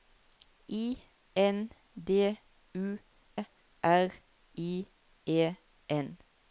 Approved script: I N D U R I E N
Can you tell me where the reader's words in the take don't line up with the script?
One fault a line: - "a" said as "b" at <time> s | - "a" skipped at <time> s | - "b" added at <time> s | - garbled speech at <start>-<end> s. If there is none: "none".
none